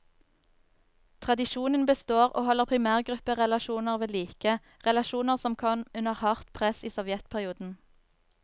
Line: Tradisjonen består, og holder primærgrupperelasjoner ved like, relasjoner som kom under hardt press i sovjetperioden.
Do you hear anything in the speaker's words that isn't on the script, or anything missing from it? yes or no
no